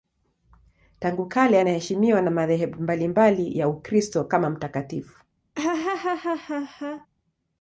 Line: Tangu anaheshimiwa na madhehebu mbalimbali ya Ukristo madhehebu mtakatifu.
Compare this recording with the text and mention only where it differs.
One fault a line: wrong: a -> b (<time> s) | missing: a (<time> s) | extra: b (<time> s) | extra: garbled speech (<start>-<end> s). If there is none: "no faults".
extra: kale (1.2 s)
wrong: madhehebu -> kama (4.2 s)